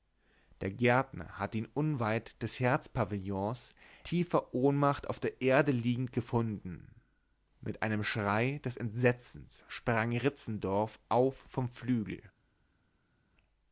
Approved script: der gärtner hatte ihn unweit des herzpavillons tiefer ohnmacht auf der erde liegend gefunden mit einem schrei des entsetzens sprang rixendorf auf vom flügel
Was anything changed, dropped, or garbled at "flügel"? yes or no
no